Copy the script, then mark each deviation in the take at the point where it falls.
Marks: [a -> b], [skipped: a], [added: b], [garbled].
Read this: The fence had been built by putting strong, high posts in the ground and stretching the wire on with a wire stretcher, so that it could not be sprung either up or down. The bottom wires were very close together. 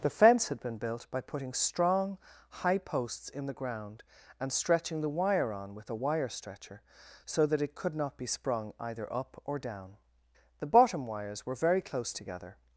The fence had been built by putting strong, high posts in the ground and stretching the wire on with a wire stretcher, so that it could not be sprung either up or down. The bottom wires were very close together.